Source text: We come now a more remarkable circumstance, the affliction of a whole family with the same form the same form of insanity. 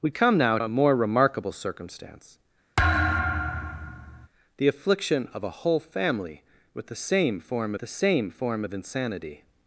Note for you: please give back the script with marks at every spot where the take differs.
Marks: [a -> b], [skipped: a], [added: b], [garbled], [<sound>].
We come now a more remarkable circumstance, [thud] the affliction of a whole family with the same form the same form of insanity.